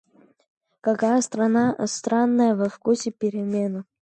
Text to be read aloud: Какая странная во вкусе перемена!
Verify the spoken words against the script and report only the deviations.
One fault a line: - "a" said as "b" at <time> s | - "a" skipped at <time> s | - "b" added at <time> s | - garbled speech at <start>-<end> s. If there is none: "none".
none